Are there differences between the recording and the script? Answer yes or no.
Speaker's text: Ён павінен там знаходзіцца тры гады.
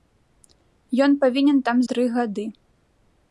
yes